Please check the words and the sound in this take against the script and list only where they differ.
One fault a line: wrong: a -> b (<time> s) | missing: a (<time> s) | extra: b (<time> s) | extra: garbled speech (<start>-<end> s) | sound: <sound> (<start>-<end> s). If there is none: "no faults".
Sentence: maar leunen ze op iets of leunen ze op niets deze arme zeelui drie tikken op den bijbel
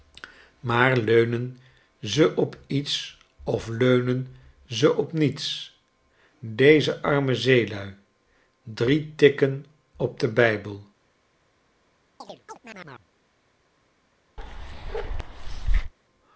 sound: chirp (12.2-13.1 s)
sound: bark (14.4-15.9 s)